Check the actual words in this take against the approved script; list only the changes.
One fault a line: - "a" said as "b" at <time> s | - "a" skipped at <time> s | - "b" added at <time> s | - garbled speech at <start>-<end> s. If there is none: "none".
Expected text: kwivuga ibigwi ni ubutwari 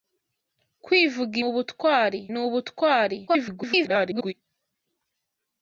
- "ibigwi" said as "ubutwari" at 1.5 s
- garbled speech at 3.3-4.3 s